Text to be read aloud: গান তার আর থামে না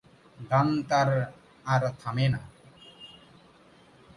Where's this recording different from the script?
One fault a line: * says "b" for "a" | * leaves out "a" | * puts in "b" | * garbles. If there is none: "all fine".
all fine